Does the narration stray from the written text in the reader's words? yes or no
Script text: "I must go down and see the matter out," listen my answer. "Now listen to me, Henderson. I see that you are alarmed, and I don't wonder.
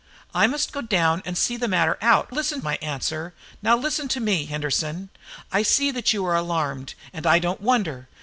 no